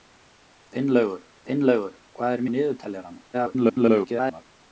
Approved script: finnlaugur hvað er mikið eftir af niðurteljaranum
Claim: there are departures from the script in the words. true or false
true